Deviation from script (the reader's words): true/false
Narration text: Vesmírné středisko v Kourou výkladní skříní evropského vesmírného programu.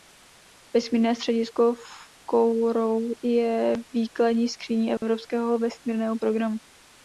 true